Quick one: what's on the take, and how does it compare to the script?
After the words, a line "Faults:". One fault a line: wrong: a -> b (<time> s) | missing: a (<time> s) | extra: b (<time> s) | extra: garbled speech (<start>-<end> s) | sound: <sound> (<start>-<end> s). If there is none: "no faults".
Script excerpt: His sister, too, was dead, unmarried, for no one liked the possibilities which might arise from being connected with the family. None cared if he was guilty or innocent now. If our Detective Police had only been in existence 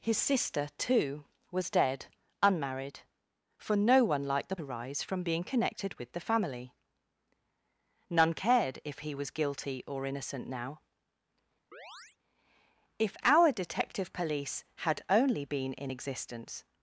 His sister, too, was dead, unmarried, for no one liked the arise from being connected with the family. None cared if he was guilty or innocent now. If our Detective Police had only been in existence
Faults:
missing: possibilities which might (4.5 s)
sound: chirp (11.7-12.2 s)